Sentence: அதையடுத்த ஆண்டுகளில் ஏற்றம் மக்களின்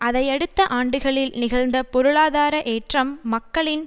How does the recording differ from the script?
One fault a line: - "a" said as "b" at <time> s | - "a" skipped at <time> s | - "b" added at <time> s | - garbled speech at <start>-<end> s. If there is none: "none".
- "நிகழ்ந்த பொருளாதார" added at 1.4 s